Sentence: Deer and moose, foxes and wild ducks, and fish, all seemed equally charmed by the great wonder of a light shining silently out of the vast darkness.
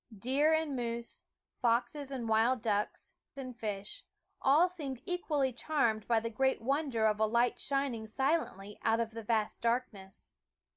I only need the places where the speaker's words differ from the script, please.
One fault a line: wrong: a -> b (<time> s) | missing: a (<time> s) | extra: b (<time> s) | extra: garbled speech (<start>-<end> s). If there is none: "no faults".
no faults